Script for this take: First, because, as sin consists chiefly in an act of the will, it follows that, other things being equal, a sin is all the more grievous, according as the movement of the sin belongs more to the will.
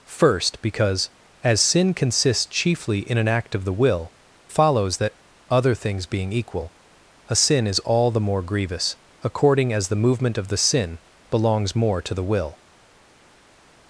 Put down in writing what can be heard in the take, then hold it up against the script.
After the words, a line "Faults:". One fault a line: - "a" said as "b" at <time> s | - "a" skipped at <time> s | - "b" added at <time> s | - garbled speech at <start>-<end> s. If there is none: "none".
First, because, as sin consists chiefly in an act of the will, follows that, other things being equal, a sin is all the more grievous, according as the movement of the sin belongs more to the will.
Faults:
- "it" skipped at 4.1 s